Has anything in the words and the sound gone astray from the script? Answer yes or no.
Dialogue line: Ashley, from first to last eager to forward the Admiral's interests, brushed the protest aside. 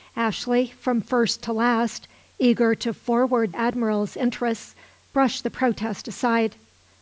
yes